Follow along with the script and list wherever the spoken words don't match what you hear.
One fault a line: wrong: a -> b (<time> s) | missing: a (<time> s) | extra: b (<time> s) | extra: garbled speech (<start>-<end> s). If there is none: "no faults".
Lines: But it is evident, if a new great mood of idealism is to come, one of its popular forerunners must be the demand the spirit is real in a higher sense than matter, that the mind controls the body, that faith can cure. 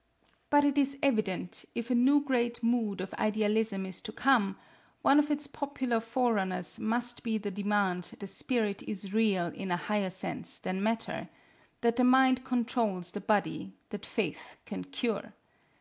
no faults